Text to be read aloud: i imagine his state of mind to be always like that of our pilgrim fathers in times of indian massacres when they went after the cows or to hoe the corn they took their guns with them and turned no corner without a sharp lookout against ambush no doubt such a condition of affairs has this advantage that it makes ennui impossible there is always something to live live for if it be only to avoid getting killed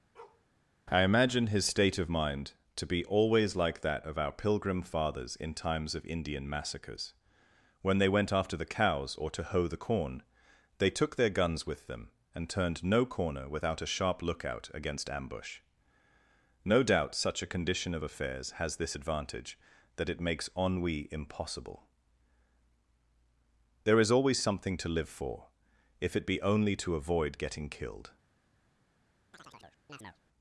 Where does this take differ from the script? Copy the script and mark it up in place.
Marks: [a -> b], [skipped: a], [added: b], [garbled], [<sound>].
[bark] i imagine his state of mind to be always like that of our pilgrim fathers in times of indian massacres when they went after the cows or to hoe the corn they took their guns with them and turned no corner without a sharp lookout against ambush no doubt such a condition of affairs has this advantage that it makes ennui impossible there is always something to live [skipped: live] for if it be only to avoid getting killed [chirp]